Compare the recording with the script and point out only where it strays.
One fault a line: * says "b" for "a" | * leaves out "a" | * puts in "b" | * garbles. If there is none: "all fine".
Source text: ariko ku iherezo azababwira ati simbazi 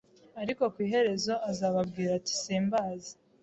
all fine